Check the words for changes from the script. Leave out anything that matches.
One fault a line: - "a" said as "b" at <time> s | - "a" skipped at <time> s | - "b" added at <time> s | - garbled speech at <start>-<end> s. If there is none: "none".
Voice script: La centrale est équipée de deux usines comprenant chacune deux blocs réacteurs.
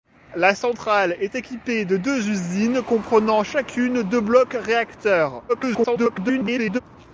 - garbled speech at 5.5-6.8 s